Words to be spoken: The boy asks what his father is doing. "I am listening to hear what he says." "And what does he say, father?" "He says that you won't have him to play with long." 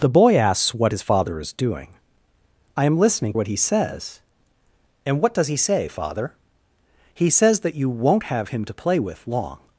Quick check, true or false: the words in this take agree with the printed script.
false